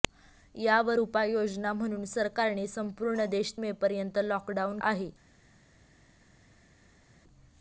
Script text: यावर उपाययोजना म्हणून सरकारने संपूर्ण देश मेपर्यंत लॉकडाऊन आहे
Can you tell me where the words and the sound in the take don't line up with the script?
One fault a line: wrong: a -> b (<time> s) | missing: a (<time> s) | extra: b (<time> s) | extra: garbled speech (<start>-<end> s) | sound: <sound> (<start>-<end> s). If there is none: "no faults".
no faults